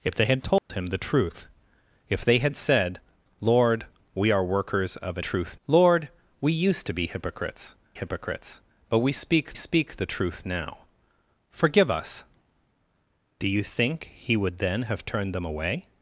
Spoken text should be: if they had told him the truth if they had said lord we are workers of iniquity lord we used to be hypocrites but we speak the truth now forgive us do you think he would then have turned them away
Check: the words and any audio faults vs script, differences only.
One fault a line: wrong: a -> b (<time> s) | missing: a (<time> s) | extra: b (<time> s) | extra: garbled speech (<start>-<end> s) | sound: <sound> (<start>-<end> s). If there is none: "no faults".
sound: dropout (0.6-0.7 s)
wrong: iniquity -> truth (5.2 s)
extra: hypocrites (7.9 s)
extra: speak (9.5 s)